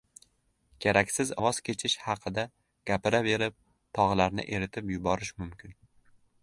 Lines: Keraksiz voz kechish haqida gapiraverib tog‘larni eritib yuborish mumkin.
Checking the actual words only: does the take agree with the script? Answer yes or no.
yes